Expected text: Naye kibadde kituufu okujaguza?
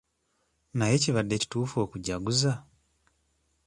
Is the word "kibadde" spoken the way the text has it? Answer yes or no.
yes